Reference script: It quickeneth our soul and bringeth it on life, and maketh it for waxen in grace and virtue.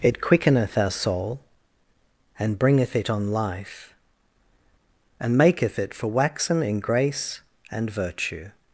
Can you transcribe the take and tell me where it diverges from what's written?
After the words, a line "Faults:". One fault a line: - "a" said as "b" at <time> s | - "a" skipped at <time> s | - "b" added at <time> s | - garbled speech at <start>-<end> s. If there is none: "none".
It quickeneth our soul and bringeth it on life, and maketh it for waxen in grace and virtue.
Faults:
none